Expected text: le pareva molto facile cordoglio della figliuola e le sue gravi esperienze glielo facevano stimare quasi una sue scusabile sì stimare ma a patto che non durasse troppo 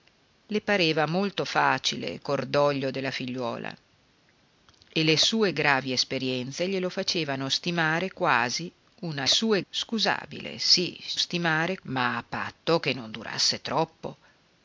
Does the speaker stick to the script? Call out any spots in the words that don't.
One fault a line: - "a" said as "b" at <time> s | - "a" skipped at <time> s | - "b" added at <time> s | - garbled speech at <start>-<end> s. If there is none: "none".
none